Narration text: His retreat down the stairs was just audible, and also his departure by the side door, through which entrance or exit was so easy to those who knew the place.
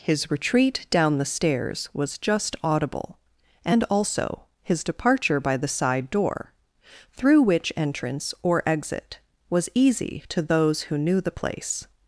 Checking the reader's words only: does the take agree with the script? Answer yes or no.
no